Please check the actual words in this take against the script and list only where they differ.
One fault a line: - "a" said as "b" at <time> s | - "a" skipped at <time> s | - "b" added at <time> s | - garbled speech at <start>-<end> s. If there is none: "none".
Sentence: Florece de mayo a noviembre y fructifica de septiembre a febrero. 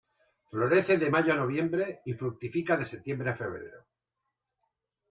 none